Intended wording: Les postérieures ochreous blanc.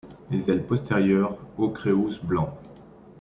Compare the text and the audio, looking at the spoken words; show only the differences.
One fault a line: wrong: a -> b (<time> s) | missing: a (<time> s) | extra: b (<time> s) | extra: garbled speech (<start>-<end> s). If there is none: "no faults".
extra: ailes (0.5 s)